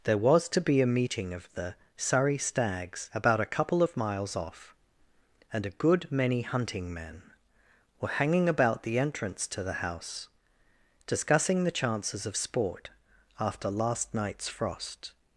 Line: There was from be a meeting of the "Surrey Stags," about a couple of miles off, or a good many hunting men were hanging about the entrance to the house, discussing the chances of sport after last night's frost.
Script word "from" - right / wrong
wrong